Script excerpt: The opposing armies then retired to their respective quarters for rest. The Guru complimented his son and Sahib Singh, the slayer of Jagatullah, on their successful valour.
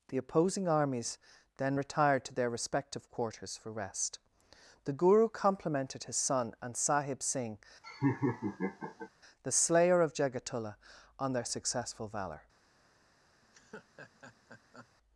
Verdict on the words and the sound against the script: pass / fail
fail